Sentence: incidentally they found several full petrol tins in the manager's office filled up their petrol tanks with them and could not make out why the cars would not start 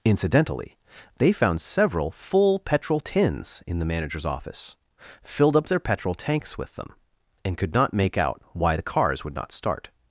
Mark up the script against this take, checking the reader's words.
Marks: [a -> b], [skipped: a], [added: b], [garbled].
incidentally they found several full petrol tins in the manager's office filled up their petrol tanks with them and could not make out why the cars would not start